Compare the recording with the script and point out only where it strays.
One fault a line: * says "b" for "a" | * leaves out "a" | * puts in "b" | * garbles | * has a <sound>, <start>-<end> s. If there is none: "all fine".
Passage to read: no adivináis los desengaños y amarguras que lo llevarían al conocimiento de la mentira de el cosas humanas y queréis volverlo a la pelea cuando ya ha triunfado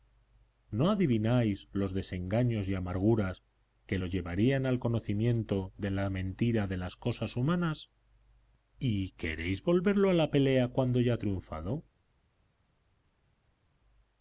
* says "las" for "el"